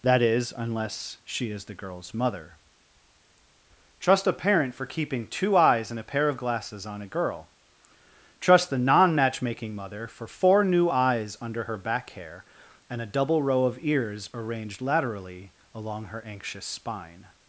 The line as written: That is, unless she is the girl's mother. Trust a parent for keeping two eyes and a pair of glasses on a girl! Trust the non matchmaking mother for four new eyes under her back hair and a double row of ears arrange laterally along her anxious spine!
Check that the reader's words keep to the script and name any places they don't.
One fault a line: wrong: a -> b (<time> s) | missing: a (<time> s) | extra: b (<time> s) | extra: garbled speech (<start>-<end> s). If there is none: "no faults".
wrong: arrange -> arranged (14.3 s)